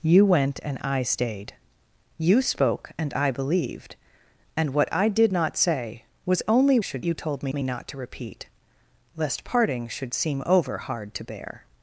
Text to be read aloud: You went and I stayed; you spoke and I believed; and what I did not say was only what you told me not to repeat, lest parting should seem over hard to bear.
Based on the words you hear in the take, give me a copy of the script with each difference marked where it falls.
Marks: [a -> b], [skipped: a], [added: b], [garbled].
You went and I stayed; you spoke and I believed; and what I did not say was only [what -> should] you told me [added: me] not to repeat, lest parting should seem over hard to bear.